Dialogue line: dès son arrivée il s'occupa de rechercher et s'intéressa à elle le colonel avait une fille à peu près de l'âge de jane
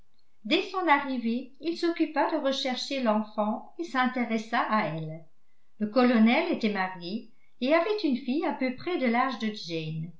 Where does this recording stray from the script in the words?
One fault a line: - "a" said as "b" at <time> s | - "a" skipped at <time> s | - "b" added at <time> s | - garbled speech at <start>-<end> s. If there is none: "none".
- "l'enfant" added at 3.0 s
- "était marié et" added at 6.5 s